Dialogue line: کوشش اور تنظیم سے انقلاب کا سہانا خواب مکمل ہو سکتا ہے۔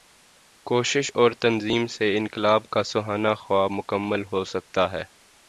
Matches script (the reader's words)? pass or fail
pass